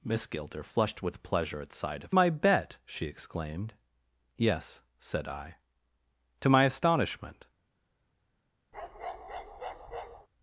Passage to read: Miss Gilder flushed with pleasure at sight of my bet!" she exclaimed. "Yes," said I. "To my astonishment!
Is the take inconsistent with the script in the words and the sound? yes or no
yes